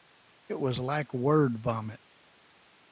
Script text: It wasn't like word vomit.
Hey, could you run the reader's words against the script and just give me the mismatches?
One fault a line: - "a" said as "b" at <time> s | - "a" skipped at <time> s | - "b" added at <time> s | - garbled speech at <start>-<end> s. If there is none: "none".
- "wasn't" said as "was" at 0.6 s